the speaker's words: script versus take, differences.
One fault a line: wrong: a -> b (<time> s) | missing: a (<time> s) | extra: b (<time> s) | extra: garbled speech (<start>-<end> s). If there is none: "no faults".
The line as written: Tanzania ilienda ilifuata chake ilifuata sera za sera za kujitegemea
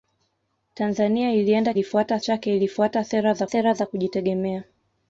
no faults